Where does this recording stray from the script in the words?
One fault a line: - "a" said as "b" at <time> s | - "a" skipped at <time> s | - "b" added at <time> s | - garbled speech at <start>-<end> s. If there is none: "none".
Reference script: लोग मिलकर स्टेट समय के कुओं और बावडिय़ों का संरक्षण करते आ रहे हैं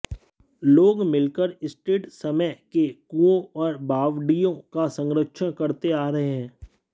none